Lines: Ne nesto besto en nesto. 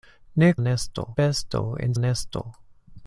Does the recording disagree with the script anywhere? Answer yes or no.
no